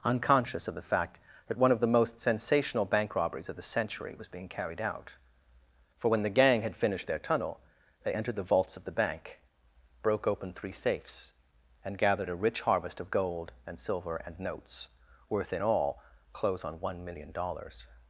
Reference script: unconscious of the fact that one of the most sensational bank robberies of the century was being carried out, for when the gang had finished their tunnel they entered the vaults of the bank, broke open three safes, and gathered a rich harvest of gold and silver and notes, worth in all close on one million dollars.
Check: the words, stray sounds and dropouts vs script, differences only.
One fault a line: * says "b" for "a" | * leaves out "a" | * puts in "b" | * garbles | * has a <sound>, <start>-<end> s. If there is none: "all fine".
all fine